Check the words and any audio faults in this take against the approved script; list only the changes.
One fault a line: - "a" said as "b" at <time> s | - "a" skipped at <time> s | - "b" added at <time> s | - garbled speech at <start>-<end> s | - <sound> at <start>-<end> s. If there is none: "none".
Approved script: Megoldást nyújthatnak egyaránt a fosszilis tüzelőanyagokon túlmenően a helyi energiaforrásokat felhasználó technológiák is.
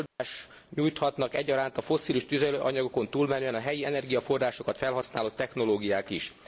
- dropout at 0.1-0.2 s